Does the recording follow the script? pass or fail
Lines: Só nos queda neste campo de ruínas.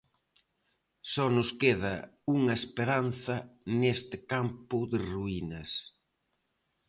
fail